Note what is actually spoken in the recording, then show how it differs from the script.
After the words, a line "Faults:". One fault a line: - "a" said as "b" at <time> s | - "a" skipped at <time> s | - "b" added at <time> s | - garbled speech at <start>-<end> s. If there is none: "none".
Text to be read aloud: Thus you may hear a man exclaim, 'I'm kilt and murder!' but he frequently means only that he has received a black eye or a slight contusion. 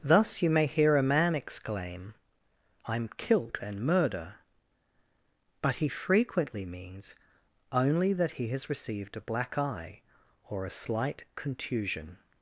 Thus you may hear a man exclaim, 'I'm kilt and murder!' but he frequently means only that he has received a black eye or a slight contusion.
Faults:
none